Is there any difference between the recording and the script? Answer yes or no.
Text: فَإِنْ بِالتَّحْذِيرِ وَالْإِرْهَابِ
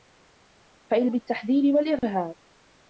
no